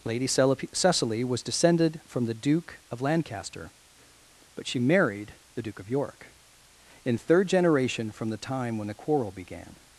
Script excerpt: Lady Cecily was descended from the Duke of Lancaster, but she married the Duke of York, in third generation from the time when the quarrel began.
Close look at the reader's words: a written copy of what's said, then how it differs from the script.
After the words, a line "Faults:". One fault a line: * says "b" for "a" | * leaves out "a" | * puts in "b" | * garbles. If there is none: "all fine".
Lady Cecily was descended from the Duke of Lancaster, but she married the Duke of York, in third generation from the time when the quarrel began.
Faults:
all fine